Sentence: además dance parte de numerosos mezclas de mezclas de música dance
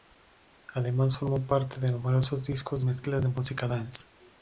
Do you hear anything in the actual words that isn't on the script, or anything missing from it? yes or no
yes